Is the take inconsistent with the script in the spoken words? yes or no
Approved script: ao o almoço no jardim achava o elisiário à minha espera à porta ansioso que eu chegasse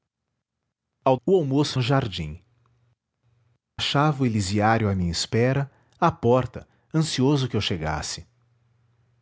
no